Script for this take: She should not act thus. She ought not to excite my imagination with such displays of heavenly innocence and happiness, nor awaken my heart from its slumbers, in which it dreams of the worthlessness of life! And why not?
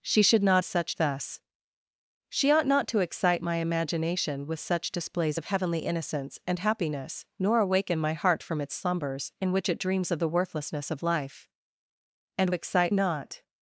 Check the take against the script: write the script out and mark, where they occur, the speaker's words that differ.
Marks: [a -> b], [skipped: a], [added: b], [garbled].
She should not [act -> such] thus. She ought not to excite my imagination with such displays of heavenly innocence and happiness, nor awaken my heart from its slumbers, in which it dreams of the worthlessness of life! And [why -> excite] not?